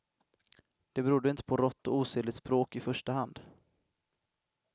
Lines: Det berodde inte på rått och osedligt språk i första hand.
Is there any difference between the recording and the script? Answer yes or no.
no